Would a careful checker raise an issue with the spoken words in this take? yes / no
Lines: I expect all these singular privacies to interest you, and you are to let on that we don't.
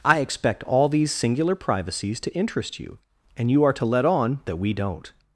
no